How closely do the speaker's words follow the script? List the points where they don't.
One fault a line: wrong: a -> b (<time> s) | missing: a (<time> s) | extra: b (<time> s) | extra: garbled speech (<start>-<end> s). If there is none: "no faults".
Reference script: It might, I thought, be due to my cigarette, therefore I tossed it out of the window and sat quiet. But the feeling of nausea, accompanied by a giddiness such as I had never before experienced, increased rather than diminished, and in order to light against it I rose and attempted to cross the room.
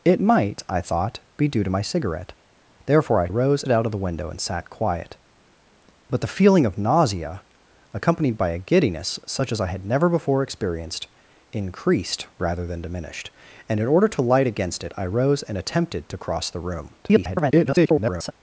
wrong: tossed -> rose (3.3 s)
extra: garbled speech (17.0-18.3 s)